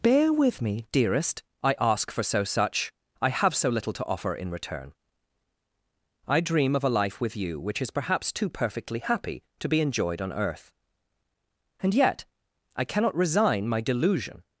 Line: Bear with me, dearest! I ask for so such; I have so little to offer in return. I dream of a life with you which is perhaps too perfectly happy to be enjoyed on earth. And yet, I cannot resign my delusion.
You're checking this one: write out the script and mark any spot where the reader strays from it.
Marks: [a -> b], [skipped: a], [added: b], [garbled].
Bear with me, dearest! I ask for so such; I have so little to offer in return. I dream of a life with you which is perhaps too perfectly happy to be enjoyed on earth. And yet, I cannot resign my delusion.